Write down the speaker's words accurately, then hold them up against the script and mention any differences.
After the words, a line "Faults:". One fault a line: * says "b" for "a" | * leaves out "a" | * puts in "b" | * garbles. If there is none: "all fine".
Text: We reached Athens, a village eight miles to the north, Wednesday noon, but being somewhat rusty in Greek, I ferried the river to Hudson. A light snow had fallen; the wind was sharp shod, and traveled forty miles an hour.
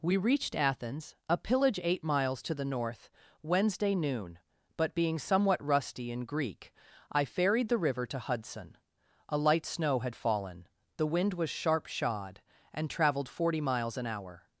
We reached Athens, a pillage eight miles to the north, Wednesday noon, but being somewhat rusty in Greek, I ferried the river to Hudson. A light snow had fallen; the wind was sharp shod, and traveled forty miles an hour.
Faults:
* says "pillage" for "village"